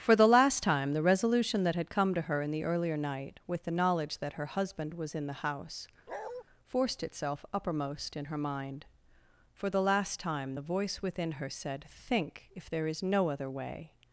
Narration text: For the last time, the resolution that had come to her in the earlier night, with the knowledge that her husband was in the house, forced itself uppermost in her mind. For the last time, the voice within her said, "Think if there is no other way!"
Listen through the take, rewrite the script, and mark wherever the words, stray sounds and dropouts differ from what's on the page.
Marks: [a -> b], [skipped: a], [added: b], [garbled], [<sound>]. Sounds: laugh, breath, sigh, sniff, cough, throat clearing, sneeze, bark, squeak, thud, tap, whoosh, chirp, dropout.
For the last time, the resolution that had come to her in the earlier night, with the knowledge that her husband was in the house, [bark] forced itself uppermost in her mind. For the last time, the voice within her said, "Think if there is no other way!"